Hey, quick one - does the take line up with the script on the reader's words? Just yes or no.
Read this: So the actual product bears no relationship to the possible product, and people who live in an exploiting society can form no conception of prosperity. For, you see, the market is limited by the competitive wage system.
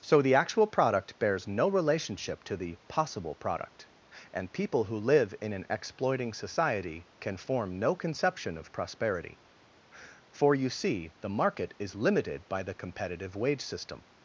yes